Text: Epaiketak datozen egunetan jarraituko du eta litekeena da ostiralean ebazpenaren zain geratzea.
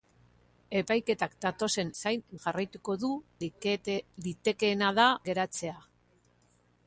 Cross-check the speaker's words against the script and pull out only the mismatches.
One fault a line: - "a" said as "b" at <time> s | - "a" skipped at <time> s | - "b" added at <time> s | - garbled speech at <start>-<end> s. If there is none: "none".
- "egunetan" said as "zain" at 2.0 s
- "eta" skipped at 3.1 s
- "ostiralean ebazpenaren zain" skipped at 5.1 s